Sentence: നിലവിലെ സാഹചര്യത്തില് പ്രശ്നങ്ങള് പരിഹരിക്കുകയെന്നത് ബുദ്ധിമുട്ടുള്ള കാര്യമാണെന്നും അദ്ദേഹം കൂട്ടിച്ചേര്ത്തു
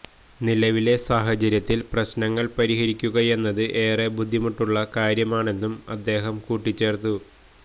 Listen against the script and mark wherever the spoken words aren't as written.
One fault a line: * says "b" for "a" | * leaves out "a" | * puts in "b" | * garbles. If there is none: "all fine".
* puts in "ഏറെ"